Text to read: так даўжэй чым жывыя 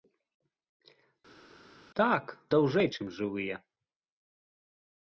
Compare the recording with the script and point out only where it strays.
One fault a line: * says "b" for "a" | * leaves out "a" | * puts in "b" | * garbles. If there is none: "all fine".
all fine